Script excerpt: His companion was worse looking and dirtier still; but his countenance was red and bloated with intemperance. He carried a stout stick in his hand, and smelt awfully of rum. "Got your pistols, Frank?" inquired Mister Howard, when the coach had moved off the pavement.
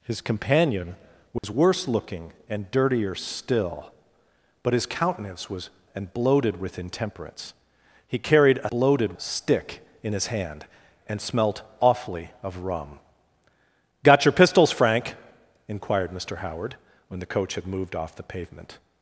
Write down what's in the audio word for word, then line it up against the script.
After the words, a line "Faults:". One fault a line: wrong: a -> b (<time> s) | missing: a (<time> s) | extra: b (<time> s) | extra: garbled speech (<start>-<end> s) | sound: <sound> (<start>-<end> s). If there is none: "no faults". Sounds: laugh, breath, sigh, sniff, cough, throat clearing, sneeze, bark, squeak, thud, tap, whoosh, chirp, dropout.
His companion was worse looking and dirtier still; but his countenance was and bloated with intemperance. He carried a bloated stick in his hand, and smelt awfully of rum. "Got your pistols, Frank?" inquired Mister Howard, when the coach had moved off the pavement.
Faults:
sound: dropout (1.4-1.4 s)
missing: red (5.7 s)
wrong: stout -> bloated (8.7 s)